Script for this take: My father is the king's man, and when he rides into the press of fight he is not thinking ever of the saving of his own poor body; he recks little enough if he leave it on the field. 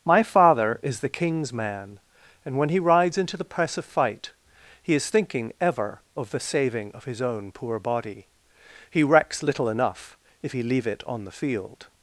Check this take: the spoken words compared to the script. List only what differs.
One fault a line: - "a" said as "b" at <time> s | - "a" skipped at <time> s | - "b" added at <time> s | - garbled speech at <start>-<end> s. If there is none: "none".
- "not" skipped at 5.1 s